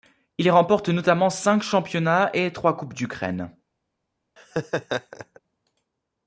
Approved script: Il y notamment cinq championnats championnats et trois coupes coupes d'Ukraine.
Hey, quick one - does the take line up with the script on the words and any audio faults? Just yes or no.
no